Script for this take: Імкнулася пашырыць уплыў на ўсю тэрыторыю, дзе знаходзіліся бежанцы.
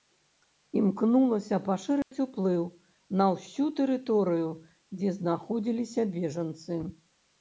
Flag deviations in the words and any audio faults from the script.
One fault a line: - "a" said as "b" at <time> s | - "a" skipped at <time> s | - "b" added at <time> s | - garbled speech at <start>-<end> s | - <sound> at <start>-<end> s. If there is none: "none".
- dropout at 2.0-2.1 s